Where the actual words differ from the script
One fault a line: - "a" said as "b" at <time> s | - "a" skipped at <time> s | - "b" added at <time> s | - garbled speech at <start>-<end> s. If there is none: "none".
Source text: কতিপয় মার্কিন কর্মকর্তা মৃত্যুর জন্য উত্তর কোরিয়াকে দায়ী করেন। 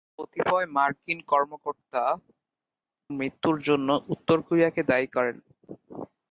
none